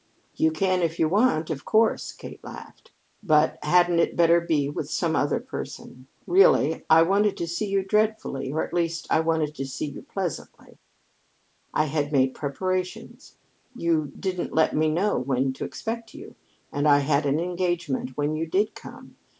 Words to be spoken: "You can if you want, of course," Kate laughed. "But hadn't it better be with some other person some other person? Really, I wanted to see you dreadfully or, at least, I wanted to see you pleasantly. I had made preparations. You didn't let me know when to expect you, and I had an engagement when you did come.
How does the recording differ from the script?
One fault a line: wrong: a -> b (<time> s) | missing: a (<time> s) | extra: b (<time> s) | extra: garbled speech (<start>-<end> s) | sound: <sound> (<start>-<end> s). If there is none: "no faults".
missing: some other person (6.1 s)